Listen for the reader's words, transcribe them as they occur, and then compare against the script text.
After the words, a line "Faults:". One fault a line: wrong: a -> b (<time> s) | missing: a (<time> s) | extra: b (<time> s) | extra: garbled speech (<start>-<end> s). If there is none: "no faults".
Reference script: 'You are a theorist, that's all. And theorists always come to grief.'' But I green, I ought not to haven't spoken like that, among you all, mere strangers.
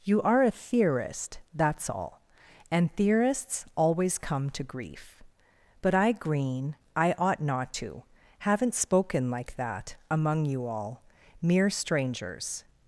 'You are a theorist, that's all. And theorists always come to grief.'' But I green, I ought not to haven't spoken like that, among you all, mere strangers.
Faults:
no faults